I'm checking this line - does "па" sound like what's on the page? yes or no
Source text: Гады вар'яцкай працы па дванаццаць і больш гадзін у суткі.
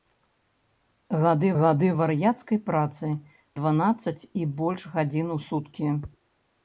no